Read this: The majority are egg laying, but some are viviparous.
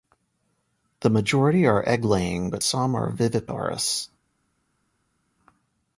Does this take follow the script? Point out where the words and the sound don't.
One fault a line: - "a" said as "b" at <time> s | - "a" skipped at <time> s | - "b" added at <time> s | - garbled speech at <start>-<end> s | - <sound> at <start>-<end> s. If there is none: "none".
none